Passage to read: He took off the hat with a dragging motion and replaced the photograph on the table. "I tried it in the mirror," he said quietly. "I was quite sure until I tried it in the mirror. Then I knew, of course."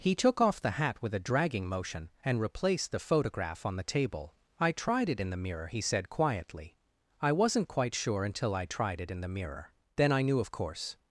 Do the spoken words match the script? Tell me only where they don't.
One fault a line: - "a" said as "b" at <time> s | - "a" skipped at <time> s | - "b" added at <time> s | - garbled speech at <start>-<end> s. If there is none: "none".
- "was" said as "wasn't" at 7.3 s